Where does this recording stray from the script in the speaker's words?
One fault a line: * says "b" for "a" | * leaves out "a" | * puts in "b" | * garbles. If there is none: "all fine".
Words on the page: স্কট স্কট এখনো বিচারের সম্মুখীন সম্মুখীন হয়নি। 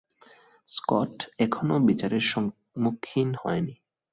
* leaves out "স্কট"
* leaves out "সম্মুখীন"